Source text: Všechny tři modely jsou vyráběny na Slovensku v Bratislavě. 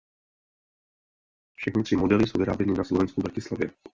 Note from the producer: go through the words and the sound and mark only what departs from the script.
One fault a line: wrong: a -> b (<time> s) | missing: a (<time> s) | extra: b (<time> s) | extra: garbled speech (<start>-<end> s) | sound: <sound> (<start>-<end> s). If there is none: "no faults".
no faults